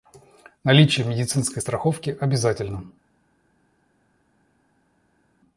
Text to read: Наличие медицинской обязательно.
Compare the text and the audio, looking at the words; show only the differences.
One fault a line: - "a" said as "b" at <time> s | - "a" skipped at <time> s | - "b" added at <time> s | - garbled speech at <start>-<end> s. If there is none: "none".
- "страховки" added at 1.6 s